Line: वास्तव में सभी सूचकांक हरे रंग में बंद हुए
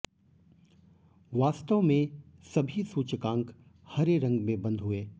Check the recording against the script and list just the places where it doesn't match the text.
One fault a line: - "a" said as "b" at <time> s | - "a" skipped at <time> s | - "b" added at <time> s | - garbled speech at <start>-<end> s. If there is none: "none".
none